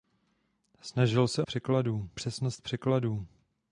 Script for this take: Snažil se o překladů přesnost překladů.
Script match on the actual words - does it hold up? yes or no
yes